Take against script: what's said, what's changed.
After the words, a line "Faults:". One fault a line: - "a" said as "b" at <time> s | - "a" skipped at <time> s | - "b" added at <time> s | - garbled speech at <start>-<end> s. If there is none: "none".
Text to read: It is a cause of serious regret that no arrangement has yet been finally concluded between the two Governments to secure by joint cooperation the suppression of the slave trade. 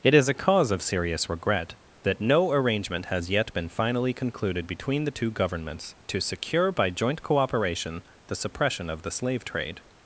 It is a cause of serious regret that no arrangement has yet been finally concluded between the two Governments to secure by joint cooperation the suppression of the slave trade.
Faults:
none